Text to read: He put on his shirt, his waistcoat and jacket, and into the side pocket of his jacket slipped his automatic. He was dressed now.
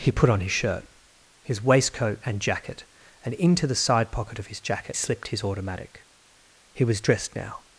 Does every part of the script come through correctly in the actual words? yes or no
yes